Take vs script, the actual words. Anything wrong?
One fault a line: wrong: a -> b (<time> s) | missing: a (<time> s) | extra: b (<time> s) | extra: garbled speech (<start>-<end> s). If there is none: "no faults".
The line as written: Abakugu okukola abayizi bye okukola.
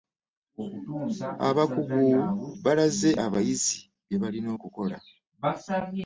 wrong: okukola -> balaze (2.6 s)
extra: balina (4.2 s)